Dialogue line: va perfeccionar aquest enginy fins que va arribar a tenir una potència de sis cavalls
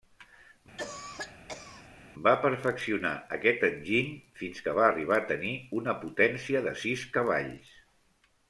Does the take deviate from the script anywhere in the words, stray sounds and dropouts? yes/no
yes